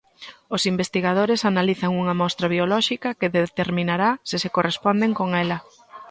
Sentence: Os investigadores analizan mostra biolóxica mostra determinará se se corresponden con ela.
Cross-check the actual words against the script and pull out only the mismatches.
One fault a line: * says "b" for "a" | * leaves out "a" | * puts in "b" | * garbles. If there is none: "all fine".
* puts in "unha"
* says "que" for "mostra"